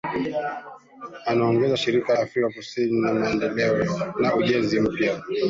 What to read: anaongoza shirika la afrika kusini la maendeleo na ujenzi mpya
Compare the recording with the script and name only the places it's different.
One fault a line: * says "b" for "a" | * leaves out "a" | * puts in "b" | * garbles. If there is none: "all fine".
* leaves out "la"